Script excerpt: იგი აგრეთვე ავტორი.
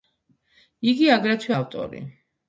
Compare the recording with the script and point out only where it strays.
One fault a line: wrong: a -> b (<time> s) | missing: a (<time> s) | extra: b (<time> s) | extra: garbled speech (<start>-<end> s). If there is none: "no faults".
no faults